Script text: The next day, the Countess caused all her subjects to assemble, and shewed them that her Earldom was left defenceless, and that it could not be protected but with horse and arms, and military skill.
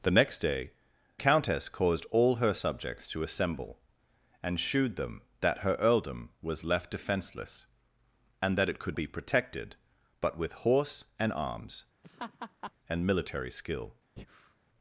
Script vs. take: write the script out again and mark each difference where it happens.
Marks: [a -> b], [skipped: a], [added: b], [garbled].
The next day, [skipped: the] Countess caused all her subjects to assemble, and shewed them that her Earldom was left defenceless, and that it could [skipped: not] be protected but with horse and arms, and military skill.